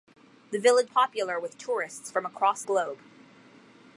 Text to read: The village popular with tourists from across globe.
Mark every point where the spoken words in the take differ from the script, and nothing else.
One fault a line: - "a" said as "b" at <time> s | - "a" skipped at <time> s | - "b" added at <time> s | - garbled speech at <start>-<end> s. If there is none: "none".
none